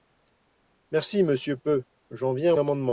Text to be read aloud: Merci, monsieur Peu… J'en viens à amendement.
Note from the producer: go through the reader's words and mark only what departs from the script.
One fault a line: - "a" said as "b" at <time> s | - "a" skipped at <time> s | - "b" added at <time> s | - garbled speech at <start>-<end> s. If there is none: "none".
none